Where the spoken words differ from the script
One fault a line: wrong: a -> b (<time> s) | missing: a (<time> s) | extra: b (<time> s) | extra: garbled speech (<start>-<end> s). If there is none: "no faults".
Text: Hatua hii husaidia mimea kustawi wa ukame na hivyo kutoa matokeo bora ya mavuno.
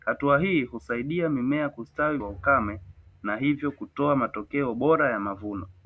no faults